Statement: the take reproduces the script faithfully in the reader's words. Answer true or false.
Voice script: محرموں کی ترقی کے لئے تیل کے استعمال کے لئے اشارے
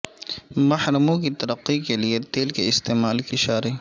false